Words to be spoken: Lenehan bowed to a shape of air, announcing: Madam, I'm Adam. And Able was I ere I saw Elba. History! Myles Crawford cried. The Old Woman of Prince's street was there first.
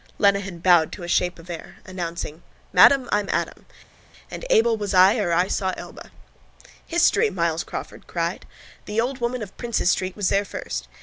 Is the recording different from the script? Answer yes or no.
no